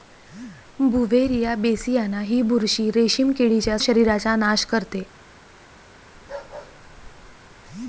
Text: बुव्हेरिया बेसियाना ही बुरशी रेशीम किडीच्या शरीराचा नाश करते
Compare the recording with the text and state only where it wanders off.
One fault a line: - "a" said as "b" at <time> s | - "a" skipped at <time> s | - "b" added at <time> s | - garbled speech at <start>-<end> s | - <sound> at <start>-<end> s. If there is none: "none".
- bark at 6.1-7.6 s